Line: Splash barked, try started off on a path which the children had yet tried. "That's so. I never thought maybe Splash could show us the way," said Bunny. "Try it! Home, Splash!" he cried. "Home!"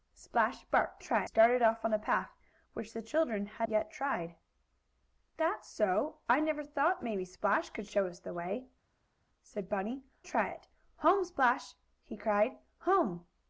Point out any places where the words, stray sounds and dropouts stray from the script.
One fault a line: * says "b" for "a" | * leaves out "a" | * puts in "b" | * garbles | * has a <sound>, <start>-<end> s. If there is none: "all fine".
all fine